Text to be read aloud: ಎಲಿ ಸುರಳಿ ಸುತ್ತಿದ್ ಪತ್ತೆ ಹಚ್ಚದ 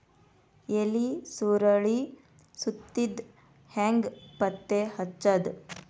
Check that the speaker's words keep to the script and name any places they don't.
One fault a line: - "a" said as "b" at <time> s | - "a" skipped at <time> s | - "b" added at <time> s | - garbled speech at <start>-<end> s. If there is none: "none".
- "ಹೆಂಗ್" added at 3.7 s